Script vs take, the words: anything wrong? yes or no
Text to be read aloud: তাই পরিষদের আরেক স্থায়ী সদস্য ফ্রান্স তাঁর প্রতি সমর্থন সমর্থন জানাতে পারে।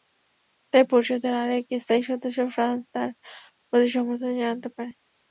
yes